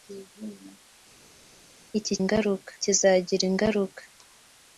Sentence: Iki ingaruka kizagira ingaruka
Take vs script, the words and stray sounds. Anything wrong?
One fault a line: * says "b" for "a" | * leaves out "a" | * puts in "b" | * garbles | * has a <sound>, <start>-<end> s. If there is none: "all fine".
all fine